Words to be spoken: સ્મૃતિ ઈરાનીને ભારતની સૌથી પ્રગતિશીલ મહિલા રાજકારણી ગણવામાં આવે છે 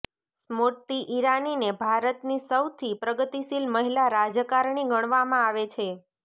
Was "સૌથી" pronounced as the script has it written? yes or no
yes